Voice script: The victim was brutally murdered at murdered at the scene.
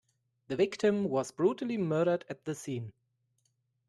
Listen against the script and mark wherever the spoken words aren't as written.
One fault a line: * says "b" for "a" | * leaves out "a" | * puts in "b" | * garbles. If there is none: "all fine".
* leaves out "murdered at"